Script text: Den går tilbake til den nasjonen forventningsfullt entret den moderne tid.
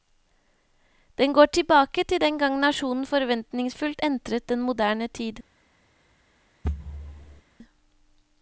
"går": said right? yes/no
yes